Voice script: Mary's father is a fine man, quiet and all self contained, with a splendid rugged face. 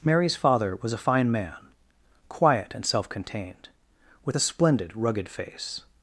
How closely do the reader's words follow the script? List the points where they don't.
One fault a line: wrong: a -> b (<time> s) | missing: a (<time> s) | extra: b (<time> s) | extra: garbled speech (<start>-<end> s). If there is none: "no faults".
wrong: is -> was (0.8 s)
missing: all (2.8 s)